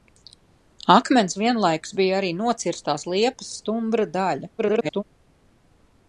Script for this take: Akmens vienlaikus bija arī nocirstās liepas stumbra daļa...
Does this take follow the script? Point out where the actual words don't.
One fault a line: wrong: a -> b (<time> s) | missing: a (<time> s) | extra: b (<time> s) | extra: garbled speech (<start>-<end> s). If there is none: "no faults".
extra: garbled speech (4.6-5.0 s)